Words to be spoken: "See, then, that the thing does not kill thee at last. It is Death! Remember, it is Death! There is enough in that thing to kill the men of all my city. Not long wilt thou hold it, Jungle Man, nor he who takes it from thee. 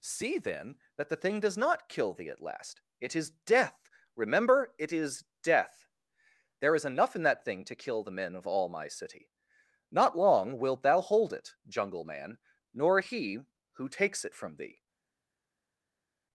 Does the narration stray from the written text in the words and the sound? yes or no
no